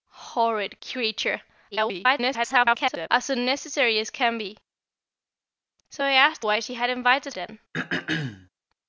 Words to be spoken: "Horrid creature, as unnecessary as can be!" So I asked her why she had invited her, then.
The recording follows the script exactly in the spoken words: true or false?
false